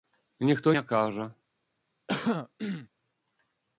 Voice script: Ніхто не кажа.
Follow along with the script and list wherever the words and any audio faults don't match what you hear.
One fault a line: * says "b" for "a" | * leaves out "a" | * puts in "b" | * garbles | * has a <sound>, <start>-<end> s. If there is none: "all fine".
* has a throat clearing, 2.1-2.9 s